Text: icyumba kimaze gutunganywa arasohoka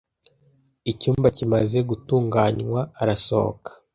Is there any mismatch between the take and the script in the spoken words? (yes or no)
no